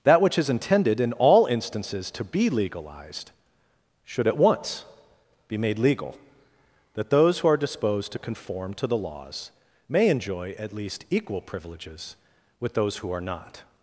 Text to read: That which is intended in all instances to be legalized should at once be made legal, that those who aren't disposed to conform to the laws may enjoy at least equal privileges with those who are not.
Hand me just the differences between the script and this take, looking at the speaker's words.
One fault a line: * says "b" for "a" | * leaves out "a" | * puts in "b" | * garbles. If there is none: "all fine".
* says "are" for "aren't"